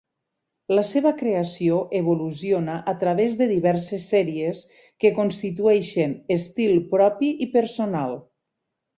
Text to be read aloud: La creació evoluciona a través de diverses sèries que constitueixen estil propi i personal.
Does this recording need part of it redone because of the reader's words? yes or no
yes